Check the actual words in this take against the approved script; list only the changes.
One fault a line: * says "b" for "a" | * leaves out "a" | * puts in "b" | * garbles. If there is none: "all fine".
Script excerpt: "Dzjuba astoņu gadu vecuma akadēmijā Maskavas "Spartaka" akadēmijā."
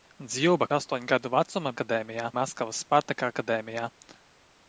all fine